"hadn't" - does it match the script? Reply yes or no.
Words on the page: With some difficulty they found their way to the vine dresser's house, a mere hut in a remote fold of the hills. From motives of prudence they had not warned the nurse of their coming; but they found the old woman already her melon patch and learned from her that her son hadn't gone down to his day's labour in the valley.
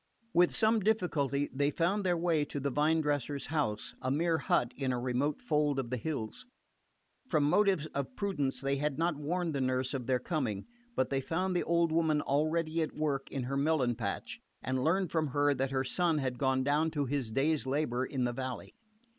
no